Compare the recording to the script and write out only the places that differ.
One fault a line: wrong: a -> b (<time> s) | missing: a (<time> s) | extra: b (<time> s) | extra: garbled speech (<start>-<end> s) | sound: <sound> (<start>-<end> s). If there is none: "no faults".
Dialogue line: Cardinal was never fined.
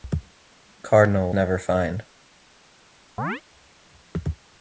missing: was (1.3 s)
sound: chirp (3.2-3.4 s)